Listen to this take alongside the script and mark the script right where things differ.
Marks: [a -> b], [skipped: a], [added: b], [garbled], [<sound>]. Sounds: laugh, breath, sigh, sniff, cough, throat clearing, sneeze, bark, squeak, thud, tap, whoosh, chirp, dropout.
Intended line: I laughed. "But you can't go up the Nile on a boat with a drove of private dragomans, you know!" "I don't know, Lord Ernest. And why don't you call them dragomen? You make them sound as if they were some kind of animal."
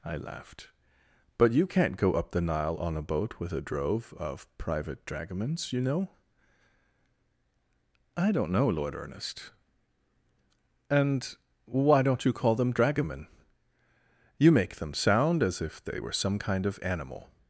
I laughed. "But you can't go up the Nile on a boat with a drove of private dragomans, you know!" "I don't know, Lord Ernest. And why don't you call them dragomen? You make them sound as if they were some kind of animal."